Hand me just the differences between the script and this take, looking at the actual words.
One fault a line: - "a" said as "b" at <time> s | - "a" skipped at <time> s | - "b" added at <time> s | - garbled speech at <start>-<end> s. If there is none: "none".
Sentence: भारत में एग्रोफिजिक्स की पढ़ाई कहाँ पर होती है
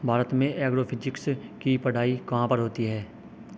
none